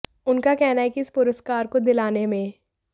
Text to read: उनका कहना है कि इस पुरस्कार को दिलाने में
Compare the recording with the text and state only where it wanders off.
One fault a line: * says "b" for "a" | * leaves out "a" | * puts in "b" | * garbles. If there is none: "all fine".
all fine